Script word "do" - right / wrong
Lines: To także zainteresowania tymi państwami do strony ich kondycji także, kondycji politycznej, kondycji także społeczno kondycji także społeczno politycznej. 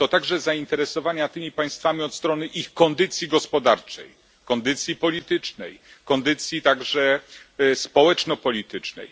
wrong